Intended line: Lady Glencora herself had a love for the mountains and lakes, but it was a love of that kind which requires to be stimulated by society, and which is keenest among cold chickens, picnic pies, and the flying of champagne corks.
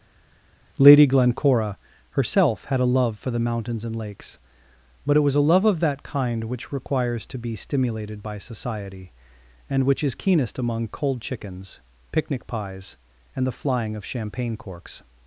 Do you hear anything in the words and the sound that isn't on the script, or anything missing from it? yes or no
no